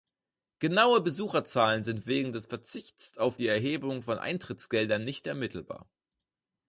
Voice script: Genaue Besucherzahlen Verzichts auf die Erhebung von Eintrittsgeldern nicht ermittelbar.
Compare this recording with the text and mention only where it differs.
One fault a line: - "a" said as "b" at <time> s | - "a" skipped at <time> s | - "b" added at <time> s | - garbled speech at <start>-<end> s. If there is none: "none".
- "sind wegen des" added at 1.8 s